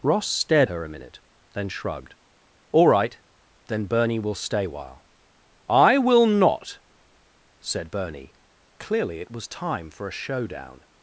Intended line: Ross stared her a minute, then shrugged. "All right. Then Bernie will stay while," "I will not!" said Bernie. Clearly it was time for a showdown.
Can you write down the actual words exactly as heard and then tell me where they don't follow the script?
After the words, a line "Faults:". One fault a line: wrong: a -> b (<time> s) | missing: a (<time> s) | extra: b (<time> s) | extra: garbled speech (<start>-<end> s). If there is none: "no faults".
Ross stared her a minute, then shrugged. "All right. Then Bernie will stay while," "I will not!" said Bernie. Clearly it was time for a showdown.
Faults:
no faults